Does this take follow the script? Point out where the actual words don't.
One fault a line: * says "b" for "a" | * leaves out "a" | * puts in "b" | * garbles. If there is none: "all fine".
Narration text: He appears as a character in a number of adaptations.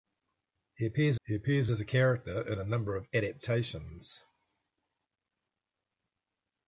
* puts in "he appears"